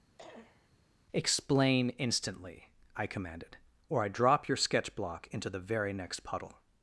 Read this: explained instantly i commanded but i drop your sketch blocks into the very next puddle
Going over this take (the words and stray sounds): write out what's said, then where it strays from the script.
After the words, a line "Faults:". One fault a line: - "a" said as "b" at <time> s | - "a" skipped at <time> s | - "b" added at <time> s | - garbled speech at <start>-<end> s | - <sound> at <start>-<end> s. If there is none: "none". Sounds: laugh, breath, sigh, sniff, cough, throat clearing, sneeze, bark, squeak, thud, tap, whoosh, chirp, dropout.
explain instantly i commanded or i drop your sketch block into the very next puddle
Faults:
- cough at 0.2-0.7 s
- "explained" said as "explain" at 1.1 s
- "but" said as "or" at 3.9 s
- "blocks" said as "block" at 4.9 s